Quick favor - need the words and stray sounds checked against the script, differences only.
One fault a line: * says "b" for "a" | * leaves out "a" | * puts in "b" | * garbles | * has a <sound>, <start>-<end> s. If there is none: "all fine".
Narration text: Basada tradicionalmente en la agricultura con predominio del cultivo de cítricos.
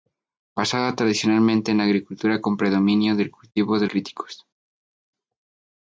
all fine